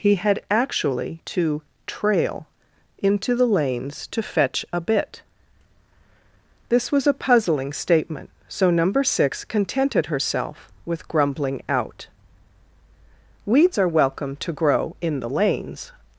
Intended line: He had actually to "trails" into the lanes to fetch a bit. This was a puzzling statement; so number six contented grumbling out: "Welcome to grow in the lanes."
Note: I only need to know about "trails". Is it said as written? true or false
false